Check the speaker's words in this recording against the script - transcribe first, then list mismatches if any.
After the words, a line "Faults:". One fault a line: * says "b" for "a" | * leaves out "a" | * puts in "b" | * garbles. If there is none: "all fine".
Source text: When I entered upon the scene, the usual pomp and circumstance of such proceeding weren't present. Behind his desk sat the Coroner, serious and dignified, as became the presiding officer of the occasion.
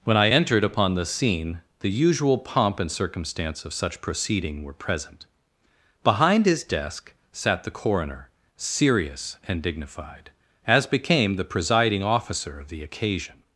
When I entered upon the scene, the usual pomp and circumstance of such proceeding were present. Behind his desk sat the Coroner, serious and dignified, as became the presiding officer of the occasion.
Faults:
* says "were" for "weren't"